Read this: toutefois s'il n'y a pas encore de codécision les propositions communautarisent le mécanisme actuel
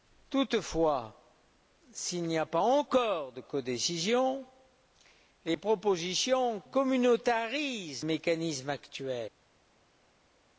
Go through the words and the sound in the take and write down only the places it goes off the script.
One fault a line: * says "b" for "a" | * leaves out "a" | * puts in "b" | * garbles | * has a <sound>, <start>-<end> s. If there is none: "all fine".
* leaves out "le"